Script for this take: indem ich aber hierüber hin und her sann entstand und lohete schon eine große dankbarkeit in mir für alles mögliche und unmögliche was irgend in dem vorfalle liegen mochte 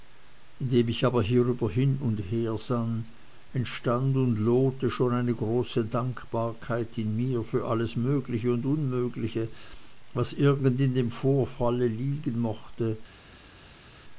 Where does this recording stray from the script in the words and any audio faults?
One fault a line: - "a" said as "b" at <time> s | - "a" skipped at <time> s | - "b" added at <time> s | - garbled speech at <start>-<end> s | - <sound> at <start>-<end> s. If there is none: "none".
none